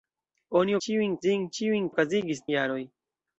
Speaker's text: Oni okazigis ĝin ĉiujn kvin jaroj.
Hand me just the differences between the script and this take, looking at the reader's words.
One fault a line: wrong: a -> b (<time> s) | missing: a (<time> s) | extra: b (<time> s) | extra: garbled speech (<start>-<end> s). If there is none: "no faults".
wrong: okazigis -> ĉiujn (0.9 s)
wrong: kvin -> okazigis (1.9 s)